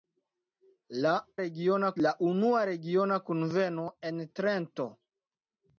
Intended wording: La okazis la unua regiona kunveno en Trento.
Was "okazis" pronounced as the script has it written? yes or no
no